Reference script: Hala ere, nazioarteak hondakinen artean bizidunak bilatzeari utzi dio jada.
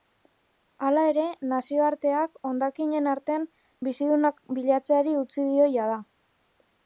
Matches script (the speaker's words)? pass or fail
pass